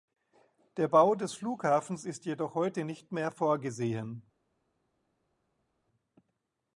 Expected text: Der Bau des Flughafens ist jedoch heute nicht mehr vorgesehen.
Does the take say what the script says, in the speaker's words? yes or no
yes